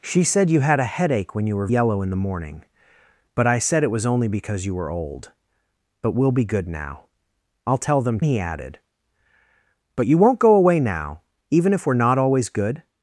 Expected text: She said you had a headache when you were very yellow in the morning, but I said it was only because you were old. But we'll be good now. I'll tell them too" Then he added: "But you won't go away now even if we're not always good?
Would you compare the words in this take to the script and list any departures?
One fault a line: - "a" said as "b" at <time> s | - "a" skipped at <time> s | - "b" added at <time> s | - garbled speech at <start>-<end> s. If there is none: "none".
- "very" skipped at 1.7 s
- "too Then" skipped at 8.2 s